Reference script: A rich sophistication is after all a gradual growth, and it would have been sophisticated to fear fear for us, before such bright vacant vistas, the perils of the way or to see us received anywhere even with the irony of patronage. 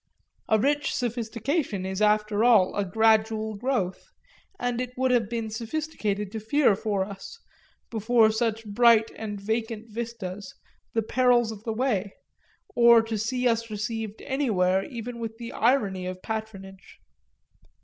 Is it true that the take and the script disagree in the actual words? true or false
true